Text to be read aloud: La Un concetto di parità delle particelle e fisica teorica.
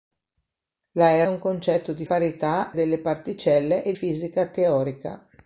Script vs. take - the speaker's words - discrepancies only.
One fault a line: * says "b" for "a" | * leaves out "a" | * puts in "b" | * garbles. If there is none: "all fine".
all fine